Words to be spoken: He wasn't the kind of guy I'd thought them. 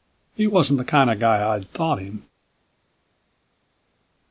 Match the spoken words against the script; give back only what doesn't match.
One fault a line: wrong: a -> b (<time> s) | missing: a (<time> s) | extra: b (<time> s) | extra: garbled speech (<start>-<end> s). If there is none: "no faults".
wrong: them -> him (2.0 s)